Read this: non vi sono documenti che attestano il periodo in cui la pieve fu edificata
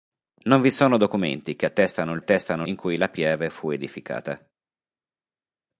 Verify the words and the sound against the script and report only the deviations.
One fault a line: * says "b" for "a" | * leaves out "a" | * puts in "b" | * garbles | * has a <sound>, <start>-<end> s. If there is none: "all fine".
* says "attestano" for "periodo"